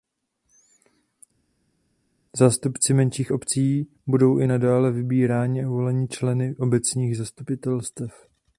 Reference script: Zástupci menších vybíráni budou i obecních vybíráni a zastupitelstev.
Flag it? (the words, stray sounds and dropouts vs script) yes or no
yes